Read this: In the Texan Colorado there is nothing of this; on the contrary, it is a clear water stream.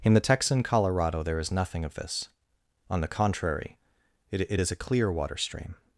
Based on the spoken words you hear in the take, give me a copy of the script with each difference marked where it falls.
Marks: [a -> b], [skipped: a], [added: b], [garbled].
In the Texan Colorado there is nothing of this; on the contrary, it [added: it] is a clear water stream.